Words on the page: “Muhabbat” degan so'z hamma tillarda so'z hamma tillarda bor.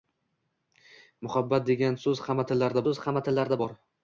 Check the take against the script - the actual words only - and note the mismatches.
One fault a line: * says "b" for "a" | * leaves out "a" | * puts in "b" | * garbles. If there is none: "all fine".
all fine